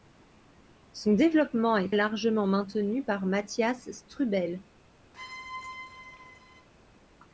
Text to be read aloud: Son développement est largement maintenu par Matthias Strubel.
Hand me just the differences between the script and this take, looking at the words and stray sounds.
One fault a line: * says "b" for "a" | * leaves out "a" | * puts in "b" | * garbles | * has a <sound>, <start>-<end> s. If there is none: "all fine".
* has a squeak, 5.1-6.7 s